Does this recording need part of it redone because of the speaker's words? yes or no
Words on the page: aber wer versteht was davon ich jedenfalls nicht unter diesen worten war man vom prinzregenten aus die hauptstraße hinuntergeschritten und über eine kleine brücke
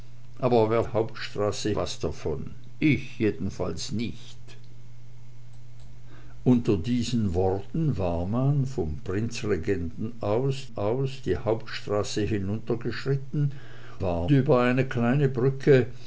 yes